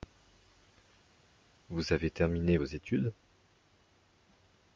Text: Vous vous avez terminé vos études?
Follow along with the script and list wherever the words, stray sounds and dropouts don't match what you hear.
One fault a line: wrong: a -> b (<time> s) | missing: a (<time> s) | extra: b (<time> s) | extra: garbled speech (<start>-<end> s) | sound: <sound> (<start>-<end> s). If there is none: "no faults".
missing: vous (1.9 s)